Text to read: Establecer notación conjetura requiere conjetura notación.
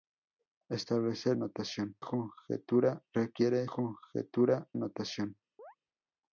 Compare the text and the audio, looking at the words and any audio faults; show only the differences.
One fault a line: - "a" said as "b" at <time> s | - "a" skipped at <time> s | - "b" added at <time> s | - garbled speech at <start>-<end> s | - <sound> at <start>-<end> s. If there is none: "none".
- chirp at 5.6-5.8 s